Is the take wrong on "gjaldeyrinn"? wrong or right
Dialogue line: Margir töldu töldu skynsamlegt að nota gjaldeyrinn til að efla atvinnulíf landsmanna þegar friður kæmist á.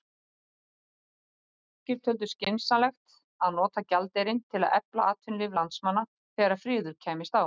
right